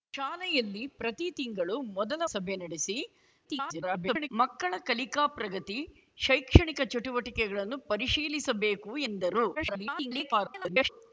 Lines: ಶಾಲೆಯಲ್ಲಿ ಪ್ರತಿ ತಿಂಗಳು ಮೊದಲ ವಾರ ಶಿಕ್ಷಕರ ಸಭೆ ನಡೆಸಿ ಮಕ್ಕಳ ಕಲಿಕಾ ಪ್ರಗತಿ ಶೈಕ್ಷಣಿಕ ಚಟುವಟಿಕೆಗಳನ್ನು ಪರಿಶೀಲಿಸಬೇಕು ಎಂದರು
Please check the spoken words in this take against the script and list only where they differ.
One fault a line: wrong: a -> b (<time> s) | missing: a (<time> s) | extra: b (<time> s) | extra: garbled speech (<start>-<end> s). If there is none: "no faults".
missing: ವಾರ ಶಿಕ್ಷಕರ (2.2 s)
extra: garbled speech (3.4-4.3 s)
extra: garbled speech (9.5-10.9 s)